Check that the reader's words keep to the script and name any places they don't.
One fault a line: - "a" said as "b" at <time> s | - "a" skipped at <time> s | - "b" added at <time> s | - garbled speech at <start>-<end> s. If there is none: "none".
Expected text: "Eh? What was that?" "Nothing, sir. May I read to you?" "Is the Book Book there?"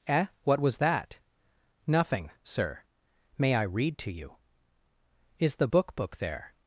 none